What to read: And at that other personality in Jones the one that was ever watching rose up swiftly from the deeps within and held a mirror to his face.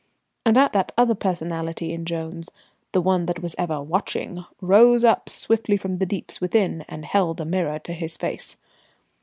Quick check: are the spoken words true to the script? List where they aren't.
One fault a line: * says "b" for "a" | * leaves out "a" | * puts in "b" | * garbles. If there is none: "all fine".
all fine